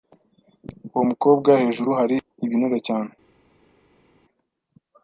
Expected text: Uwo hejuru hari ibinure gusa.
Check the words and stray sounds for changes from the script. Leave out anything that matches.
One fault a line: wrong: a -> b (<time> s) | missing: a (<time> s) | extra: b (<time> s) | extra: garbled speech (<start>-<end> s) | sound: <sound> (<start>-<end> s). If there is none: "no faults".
extra: mukobwa (1.1 s)
wrong: gusa -> cyane (2.9 s)